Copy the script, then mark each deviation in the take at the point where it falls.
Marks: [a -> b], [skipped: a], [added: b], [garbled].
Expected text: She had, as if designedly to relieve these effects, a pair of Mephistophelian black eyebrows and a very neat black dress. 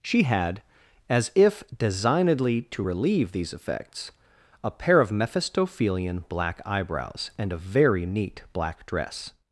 She had, as if designedly to relieve these effects, a pair of Mephistophelian black eyebrows and a very neat black dress.